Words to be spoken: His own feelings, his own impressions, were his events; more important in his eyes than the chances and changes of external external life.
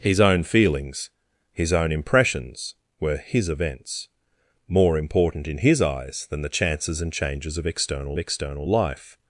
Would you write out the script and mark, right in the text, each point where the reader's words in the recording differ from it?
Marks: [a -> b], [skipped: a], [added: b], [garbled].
His own feelings, his own impressions, were his events; more important in his eyes than the chances and changes of external external life.